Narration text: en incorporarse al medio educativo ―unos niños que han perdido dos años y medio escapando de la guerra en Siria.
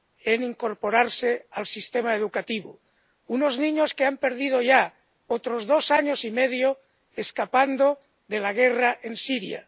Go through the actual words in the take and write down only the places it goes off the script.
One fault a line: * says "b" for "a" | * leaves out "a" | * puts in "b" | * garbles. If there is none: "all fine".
* says "sistema" for "medio"
* puts in "ya otros"